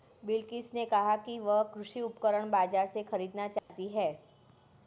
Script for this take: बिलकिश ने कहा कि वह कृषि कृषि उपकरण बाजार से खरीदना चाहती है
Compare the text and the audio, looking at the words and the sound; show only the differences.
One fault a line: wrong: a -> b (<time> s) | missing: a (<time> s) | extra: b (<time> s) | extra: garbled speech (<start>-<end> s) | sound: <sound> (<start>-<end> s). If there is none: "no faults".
missing: कृषि (2.0 s)
sound: dropout (3.6-3.7 s)